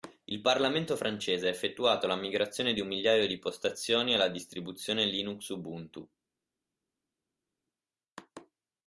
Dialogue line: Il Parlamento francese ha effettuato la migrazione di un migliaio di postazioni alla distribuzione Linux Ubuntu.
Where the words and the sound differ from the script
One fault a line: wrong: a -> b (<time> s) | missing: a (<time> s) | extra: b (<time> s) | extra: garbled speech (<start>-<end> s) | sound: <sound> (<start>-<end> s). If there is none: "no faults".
no faults